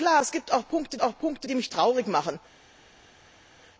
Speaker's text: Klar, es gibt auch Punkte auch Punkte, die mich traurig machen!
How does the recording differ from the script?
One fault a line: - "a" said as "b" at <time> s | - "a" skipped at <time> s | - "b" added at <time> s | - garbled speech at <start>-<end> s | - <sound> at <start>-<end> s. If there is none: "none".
none